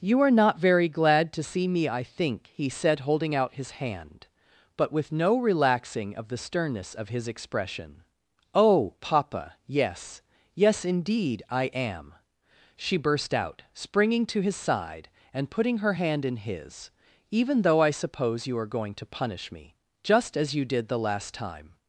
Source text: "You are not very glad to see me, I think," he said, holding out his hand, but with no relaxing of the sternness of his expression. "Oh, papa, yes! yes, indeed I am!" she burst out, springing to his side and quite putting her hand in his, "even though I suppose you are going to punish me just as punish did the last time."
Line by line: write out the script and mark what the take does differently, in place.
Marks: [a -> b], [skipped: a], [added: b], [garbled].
"You are not very glad to see me, I think," he said, holding out his hand, but with no relaxing of the sternness of his expression. "Oh, papa, yes! yes, indeed I am!" she burst out, springing to his side and [skipped: quite] putting her hand in his, "even though I suppose you are going to punish me just as [punish -> you] did the last time."